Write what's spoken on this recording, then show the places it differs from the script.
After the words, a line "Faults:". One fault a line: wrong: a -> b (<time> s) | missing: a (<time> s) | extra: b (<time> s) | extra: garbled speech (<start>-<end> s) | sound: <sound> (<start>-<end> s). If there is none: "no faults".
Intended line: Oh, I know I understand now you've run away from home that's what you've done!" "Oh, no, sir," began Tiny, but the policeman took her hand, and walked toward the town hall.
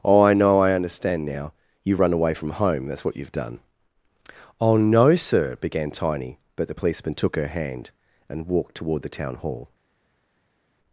Oh, I know I understand now you've run away from home that's what you've done!" "Oh, no, sir," began Tiny, but the policeman took her hand, and walked toward the town hall.
Faults:
no faults